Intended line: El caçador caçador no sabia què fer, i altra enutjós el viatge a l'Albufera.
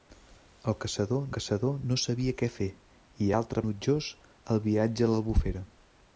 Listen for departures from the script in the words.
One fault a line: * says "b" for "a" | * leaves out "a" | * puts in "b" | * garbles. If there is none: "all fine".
all fine